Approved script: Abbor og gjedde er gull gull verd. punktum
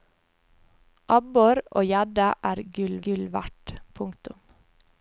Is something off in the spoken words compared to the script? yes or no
no